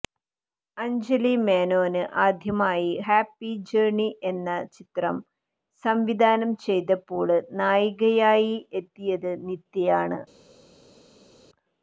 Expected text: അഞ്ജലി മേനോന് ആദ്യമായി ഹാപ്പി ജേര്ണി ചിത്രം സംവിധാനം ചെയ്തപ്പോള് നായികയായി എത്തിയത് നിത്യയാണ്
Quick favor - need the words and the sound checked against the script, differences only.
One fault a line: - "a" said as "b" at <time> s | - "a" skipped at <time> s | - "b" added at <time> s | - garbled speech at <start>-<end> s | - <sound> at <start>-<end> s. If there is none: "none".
- "എന്ന" added at 4.3 s